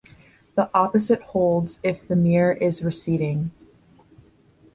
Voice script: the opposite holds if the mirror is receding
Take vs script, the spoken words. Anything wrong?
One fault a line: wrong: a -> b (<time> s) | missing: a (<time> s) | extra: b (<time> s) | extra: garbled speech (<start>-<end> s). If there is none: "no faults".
no faults